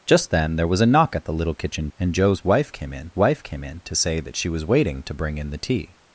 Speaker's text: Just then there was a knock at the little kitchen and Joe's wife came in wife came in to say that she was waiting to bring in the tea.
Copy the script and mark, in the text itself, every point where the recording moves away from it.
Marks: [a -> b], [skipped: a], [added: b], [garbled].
Just then there was a knock at the little kitchen and Joe's wife came in wife came in to say that she was waiting to bring in the tea.